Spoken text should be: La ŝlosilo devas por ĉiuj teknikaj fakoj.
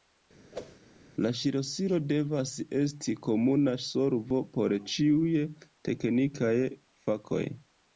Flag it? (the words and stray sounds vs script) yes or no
yes